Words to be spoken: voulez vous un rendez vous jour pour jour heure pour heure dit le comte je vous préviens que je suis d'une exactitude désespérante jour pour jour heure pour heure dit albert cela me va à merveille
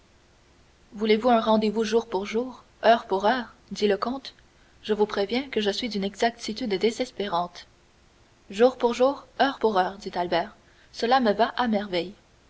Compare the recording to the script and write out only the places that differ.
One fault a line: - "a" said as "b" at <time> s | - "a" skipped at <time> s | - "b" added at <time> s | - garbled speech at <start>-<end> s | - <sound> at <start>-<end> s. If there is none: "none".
none